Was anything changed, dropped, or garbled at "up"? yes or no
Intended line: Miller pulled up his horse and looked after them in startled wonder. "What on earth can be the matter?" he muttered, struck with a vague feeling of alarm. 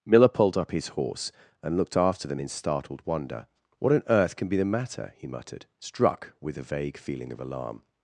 no